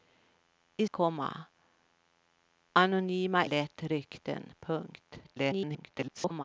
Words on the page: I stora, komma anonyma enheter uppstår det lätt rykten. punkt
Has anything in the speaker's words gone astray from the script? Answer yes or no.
yes